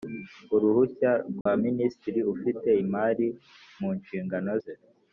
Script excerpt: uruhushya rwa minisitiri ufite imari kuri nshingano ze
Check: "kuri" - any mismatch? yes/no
yes